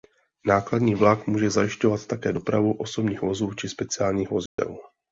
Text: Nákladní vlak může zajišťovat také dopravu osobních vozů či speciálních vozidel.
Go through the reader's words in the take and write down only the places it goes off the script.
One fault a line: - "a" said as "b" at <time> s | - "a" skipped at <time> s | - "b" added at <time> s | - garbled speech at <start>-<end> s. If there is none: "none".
none